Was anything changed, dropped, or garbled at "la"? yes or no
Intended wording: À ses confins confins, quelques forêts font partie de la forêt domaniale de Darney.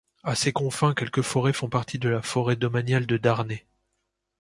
no